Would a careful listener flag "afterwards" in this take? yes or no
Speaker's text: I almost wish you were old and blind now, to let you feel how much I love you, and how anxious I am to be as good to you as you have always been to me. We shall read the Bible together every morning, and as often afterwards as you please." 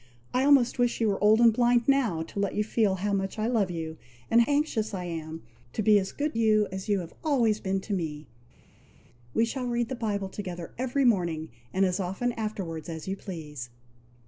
no